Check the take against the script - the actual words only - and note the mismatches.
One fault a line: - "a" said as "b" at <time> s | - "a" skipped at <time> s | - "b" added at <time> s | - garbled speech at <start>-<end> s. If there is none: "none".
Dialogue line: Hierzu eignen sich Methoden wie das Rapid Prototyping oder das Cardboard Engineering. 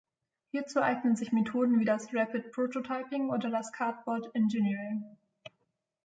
none